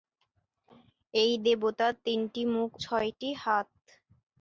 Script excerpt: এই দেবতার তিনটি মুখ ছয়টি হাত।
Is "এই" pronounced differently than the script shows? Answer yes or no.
no